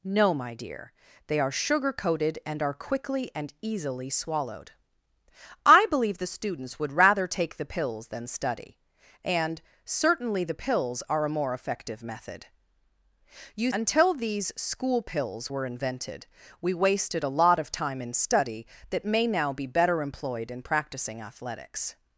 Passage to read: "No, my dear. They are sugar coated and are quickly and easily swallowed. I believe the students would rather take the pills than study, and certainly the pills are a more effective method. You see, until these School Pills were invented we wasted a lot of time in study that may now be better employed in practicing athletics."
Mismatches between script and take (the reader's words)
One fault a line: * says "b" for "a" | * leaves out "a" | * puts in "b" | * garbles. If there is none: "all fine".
* leaves out "see"